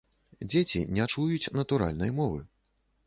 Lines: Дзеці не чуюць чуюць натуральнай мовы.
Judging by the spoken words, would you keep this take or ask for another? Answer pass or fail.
fail